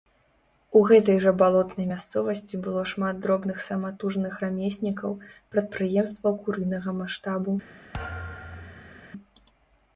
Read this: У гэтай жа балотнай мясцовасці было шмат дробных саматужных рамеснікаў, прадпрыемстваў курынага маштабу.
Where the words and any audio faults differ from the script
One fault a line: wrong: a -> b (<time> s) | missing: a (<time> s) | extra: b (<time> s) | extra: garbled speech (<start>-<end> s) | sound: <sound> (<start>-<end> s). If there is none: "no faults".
sound: thud (7.9-9.1 s)